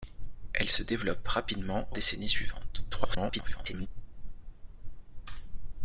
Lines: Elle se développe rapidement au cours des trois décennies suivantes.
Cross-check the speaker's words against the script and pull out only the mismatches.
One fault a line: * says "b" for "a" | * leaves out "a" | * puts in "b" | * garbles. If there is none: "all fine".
* leaves out "cours des trois"
* garbles